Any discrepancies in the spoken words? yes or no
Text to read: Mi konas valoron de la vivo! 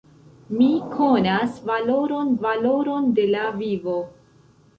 yes